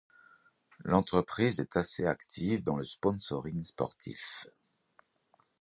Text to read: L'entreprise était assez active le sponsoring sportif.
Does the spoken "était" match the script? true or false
false